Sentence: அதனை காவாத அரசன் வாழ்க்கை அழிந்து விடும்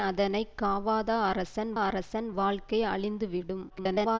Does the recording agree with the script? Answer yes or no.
no